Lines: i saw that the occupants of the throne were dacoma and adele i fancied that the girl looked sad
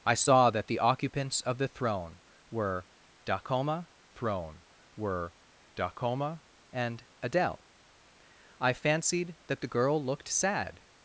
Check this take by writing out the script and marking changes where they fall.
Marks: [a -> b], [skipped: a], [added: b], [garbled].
i saw that the occupants of the throne were dacoma [added: throne were dacoma] and adele i fancied that the girl looked sad